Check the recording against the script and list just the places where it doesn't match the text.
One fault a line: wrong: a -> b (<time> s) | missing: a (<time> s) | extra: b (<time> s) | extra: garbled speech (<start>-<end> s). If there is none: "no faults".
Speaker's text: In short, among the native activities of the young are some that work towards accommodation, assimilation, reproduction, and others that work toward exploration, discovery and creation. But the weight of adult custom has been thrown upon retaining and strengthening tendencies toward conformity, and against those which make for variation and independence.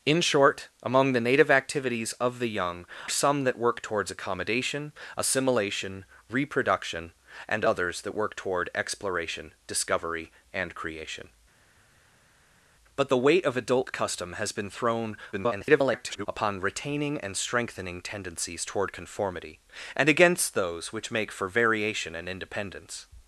missing: are (2.9 s)
extra: garbled speech (15.3-16.3 s)